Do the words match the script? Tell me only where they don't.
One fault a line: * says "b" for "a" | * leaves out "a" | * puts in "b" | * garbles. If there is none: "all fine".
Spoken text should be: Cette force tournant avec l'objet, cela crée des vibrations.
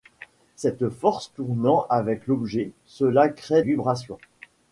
* leaves out "des"